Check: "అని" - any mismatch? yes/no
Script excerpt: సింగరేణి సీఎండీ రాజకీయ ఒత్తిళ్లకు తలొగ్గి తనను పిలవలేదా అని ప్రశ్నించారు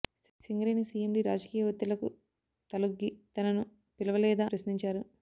yes